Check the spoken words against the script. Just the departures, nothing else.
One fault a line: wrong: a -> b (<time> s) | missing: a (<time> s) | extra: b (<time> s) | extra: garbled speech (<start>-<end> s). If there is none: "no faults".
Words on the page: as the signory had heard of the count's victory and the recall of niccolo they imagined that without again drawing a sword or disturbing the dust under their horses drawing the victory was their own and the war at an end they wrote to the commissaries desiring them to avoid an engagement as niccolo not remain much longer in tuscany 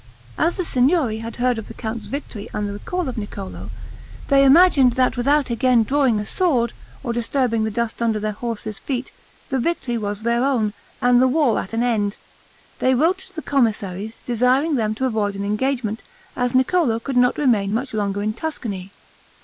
wrong: drawing -> feet (8.8 s)
extra: could (17.0 s)